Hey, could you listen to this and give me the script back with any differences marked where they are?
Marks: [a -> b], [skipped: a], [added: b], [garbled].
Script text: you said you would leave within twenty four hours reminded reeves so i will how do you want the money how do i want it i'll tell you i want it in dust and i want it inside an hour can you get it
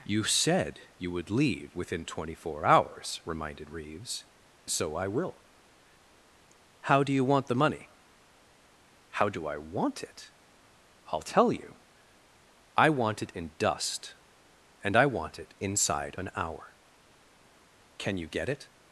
you said you would leave within twenty four hours reminded reeves so i will how do you want the money how do i want it i'll tell you i want it in dust and i want it inside an hour can you get it